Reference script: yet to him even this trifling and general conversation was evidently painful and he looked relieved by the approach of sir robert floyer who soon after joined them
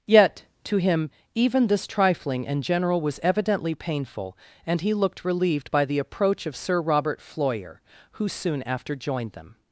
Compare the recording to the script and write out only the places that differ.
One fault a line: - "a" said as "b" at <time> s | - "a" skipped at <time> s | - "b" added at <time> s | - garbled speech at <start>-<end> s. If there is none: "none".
- "conversation" skipped at 3.0 s